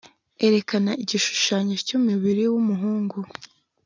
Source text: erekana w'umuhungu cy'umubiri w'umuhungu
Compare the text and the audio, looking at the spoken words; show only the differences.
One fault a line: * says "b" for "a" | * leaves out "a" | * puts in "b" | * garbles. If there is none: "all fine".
* says "igishushanyo" for "w'umuhungu"